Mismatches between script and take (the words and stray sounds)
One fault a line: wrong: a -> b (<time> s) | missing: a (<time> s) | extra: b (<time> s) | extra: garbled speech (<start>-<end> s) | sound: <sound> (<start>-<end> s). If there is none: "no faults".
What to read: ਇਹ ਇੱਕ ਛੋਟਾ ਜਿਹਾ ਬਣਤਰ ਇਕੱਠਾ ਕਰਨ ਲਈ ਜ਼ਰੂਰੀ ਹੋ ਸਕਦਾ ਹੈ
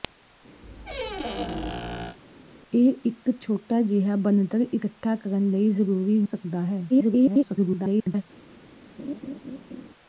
sound: squeak (0.6-2.2 s)
missing: ਹੋ (6.2 s)
extra: garbled speech (6.9-8.2 s)
sound: laugh (9.0-9.9 s)